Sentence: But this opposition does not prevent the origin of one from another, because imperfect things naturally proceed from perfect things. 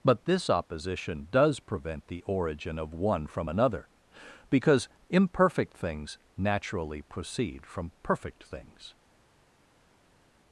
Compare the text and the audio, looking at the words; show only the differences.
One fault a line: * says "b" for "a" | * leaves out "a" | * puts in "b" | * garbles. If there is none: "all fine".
* leaves out "not"